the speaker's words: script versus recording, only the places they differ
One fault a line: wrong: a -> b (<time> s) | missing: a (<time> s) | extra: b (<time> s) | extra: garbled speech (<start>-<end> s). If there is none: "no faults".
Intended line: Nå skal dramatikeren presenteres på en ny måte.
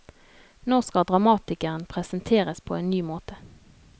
no faults